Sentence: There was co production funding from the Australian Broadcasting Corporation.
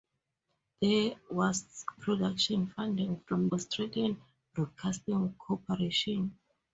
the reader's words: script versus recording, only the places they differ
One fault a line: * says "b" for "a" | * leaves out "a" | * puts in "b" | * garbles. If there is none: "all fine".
* leaves out "co"
* leaves out "the"